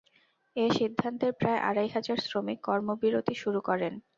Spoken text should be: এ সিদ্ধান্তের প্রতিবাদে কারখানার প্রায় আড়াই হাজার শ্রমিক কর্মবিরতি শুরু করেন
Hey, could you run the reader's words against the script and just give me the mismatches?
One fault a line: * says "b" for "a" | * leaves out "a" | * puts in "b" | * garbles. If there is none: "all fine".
* leaves out "প্রতিবাদে কারখানার"